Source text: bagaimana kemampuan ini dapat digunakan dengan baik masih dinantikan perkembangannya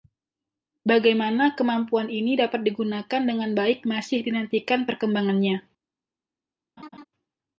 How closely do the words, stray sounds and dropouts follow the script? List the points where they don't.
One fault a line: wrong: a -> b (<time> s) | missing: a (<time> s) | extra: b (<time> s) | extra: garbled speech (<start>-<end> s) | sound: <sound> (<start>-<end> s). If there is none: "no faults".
sound: laugh (6.8-7.0 s)